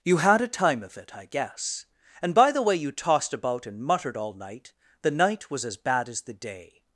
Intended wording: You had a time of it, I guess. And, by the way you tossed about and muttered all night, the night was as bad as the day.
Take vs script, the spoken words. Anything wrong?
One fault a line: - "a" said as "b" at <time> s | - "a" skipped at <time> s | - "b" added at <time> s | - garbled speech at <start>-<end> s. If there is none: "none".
none